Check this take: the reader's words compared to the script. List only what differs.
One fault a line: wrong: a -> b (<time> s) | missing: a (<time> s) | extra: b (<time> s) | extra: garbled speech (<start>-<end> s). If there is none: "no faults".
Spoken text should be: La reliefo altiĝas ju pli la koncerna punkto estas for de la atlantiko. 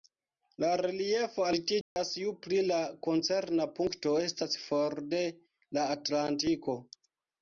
no faults